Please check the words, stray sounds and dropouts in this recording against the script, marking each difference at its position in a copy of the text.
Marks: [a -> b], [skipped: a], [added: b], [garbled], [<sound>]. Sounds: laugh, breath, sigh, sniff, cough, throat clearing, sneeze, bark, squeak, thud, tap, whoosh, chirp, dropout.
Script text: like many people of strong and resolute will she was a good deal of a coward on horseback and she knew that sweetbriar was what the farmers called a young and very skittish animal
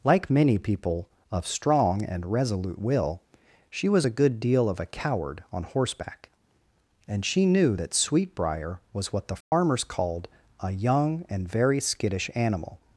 like many people of strong and resolute will she was a good deal of a coward on horseback and she knew that sweetbriar was what the farmers [dropout] called a young and very skittish animal